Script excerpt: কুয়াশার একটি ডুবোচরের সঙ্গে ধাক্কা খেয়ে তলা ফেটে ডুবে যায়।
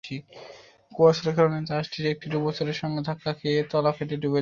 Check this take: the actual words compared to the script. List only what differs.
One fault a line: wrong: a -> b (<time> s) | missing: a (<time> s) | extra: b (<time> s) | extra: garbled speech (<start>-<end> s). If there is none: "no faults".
extra: কারণে জাহাজটি (1.4 s)